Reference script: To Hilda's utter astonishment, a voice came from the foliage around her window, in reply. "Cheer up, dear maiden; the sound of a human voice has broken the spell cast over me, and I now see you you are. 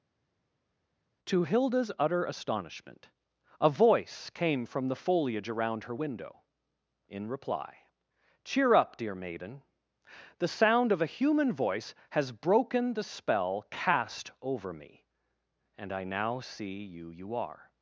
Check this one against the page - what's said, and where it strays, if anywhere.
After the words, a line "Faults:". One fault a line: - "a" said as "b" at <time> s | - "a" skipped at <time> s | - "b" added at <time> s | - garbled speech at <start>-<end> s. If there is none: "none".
To Hilda's utter astonishment, a voice came from the foliage around her window, in reply. "Cheer up, dear maiden; the sound of a human voice has broken the spell cast over me, and I now see you you are.
Faults:
none